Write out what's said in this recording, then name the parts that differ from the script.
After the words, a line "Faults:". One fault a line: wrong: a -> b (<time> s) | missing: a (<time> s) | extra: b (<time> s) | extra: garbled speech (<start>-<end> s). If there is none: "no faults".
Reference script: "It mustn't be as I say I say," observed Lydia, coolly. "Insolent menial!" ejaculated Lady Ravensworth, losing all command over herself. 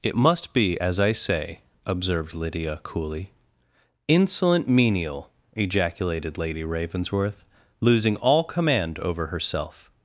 "It must be as I say," observed Lydia, coolly. "Insolent menial!" ejaculated Lady Ravensworth, losing all command over herself.
Faults:
wrong: mustn't -> must (0.2 s)
missing: I say (1.6 s)